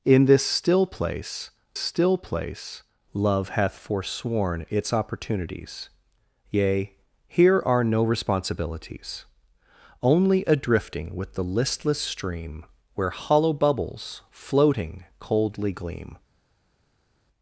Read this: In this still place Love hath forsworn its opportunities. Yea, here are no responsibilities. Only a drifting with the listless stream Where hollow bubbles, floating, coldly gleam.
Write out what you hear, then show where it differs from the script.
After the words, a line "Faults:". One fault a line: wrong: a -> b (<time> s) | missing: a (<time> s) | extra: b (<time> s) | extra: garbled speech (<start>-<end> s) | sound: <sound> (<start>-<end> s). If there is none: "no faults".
In this still place still place Love hath forsworn its opportunities. Yea, here are no responsibilities. Only a drifting with the listless stream Where hollow bubbles, floating, coldly gleam.
Faults:
extra: still place (1.7 s)